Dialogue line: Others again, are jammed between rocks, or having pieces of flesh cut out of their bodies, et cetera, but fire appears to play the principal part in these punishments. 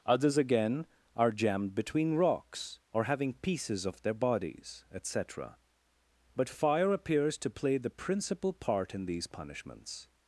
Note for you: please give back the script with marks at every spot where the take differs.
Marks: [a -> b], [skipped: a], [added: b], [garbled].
Others again, are jammed between rocks, or having pieces of [skipped: flesh cut out of] their bodies, et cetera, but fire appears to play the principal part in these punishments.